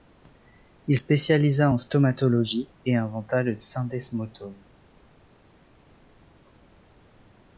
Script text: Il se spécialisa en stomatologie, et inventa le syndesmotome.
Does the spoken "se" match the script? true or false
false